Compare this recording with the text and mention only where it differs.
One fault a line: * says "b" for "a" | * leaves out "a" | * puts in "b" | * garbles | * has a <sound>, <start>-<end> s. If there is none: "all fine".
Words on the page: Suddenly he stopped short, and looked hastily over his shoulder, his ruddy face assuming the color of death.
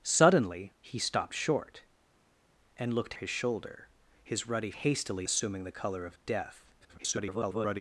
* leaves out "hastily over"
* says "hastily" for "face"
* garbles